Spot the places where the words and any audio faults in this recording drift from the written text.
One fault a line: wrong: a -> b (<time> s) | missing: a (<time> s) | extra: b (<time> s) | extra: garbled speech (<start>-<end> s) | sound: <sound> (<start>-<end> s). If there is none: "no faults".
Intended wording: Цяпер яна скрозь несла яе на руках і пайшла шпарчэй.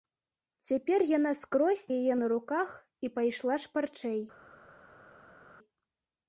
missing: несла (1.8 s)